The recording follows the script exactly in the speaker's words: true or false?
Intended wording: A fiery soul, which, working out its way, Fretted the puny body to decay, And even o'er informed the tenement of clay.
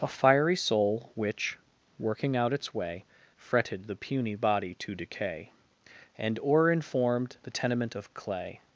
false